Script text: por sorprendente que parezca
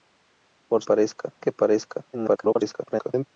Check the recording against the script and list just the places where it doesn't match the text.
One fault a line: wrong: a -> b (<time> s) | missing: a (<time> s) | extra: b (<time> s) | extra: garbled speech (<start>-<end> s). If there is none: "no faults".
wrong: sorprendente -> parezca (0.8 s)
extra: garbled speech (2.1-3.3 s)